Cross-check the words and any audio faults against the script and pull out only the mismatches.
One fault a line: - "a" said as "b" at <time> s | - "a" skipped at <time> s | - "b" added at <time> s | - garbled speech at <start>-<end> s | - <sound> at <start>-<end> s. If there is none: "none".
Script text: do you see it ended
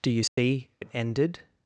- dropout at 0.3-0.4 s